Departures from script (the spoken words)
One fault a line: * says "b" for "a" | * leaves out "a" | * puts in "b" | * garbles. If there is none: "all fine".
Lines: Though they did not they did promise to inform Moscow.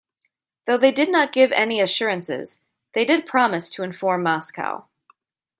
* puts in "give any assurances"